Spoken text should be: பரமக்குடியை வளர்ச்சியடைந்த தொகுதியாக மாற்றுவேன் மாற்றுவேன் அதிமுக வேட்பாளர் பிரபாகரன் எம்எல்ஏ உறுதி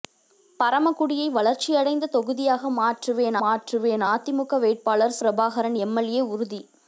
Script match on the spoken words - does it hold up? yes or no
yes